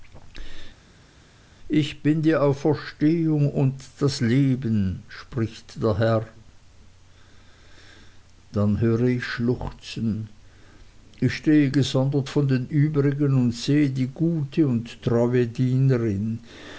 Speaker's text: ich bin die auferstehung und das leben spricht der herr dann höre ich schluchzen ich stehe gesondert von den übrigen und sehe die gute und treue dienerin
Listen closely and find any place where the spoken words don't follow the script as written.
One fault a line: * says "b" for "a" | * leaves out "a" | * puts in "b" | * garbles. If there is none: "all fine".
all fine